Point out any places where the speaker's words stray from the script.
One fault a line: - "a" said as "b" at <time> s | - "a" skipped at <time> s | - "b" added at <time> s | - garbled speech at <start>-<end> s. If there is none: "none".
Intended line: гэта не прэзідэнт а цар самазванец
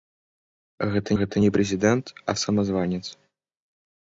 - "гэта" added at 1.2 s
- "цар" skipped at 2.4 s